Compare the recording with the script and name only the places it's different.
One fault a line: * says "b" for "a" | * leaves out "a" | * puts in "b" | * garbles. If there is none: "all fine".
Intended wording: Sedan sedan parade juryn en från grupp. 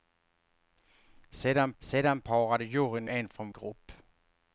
all fine